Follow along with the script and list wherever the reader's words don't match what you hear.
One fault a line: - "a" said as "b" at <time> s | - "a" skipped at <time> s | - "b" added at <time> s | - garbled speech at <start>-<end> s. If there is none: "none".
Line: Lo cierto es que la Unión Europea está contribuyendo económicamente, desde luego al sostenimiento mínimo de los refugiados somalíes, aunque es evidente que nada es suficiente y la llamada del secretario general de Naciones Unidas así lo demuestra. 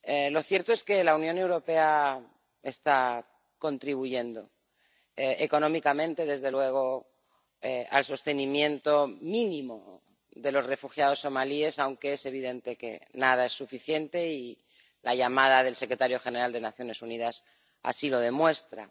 - "las" added at 16.6 s